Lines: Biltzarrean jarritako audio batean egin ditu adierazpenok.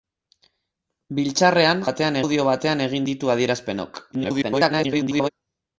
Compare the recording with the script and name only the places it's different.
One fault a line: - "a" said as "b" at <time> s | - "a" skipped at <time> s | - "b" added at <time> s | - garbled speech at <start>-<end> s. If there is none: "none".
- "jarritako" said as "batean" at 1.9 s
- garbled speech at 4.1-5.3 s